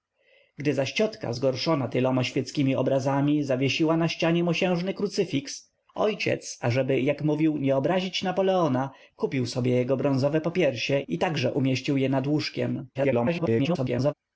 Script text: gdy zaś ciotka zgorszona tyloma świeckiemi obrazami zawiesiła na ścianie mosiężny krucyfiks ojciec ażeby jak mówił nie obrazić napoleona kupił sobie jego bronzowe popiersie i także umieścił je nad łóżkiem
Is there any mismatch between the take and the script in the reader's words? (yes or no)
yes